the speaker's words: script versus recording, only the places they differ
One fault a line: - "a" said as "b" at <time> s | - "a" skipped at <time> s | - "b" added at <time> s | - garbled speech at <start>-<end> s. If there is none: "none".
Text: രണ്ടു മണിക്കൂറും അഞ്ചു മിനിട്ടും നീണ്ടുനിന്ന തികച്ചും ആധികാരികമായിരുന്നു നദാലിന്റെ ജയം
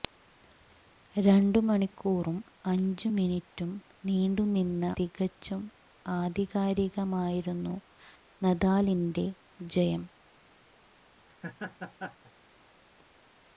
none